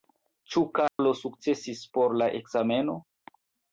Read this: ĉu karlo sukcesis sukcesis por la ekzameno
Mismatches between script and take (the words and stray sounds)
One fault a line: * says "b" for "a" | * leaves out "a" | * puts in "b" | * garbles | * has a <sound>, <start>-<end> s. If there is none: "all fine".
* has a dropout, 0.9-1.0 s
* leaves out "sukcesis"